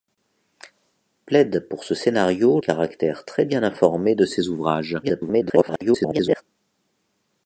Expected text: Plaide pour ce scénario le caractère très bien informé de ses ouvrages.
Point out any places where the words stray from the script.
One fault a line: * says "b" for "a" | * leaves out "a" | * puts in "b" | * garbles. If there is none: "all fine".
* leaves out "le"
* garbles